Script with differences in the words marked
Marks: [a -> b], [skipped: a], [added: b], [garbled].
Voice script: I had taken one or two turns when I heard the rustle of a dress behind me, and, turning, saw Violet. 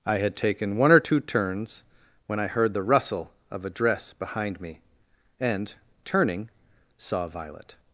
I had taken one or two turns when I heard the rustle of a dress behind me, and, turning, saw Violet.